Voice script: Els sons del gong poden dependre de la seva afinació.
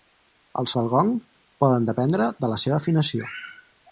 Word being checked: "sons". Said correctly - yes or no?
no